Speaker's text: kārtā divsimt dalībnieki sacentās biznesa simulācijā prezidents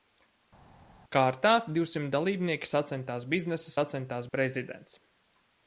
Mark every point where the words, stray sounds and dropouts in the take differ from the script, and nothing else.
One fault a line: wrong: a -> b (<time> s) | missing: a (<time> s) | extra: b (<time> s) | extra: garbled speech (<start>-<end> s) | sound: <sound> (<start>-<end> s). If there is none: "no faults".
wrong: simulācijā -> sacentās (3.8 s)